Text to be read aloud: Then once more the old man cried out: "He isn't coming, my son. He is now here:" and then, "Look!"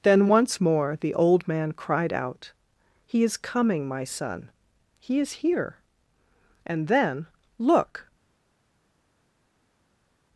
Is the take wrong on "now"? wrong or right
wrong